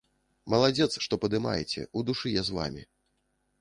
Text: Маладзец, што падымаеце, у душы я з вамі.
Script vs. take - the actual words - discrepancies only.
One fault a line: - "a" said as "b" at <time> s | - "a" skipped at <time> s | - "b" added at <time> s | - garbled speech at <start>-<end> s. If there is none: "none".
none